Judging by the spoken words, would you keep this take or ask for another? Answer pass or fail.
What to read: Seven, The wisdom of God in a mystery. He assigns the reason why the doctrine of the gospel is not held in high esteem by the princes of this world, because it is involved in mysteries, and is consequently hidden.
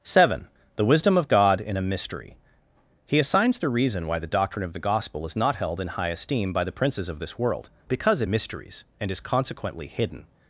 fail